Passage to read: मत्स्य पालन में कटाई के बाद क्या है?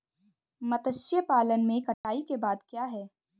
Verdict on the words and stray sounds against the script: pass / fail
fail